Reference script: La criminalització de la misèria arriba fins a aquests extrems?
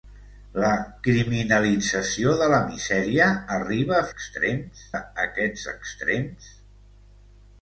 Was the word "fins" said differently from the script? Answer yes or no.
yes